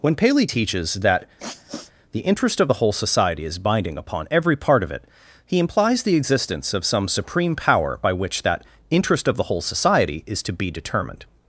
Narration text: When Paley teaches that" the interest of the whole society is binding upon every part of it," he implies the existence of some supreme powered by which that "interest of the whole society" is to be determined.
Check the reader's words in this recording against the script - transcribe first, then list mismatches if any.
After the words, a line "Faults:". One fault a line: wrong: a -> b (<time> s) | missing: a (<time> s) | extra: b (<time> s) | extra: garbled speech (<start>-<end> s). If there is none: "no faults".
When Paley teaches that" the interest of the whole society is binding upon every part of it," he implies the existence of some supreme power by which that "interest of the whole society" is to be determined.
Faults:
wrong: powered -> power (7.6 s)